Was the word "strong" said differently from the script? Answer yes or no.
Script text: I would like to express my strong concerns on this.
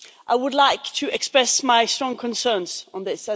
no